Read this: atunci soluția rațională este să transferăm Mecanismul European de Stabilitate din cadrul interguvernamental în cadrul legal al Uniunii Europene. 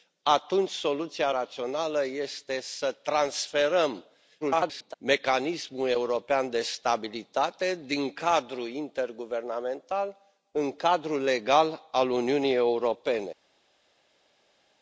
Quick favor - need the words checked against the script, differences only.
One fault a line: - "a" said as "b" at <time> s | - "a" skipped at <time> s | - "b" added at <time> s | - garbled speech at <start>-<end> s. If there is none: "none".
- garbled speech at 4.4-4.9 s